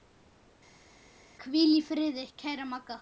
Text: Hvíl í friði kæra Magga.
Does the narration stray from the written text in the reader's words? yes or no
no